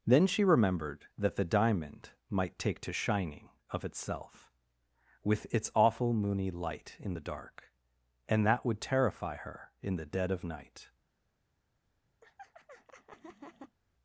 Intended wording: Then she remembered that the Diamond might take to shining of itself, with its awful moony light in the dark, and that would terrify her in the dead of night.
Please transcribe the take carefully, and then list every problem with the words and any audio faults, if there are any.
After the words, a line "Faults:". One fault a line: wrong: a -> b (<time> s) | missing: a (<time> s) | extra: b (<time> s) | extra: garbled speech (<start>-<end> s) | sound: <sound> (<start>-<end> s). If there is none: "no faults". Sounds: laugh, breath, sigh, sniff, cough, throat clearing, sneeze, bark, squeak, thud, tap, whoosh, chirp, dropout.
Then she remembered that the Diamond might take to shining of itself, with its awful moony light in the dark, and that would terrify her in the dead of night.
Faults:
sound: laugh (12.2-13.8 s)